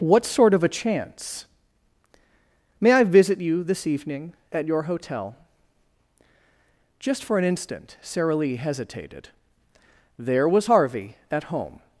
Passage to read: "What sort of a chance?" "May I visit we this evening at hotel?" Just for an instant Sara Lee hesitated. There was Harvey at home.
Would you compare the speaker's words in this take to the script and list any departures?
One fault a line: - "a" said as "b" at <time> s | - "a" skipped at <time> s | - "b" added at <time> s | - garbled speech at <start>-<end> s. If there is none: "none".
- "we" said as "you" at 3.4 s
- "your" added at 4.7 s